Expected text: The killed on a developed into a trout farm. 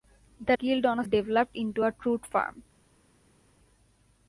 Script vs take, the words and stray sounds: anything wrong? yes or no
no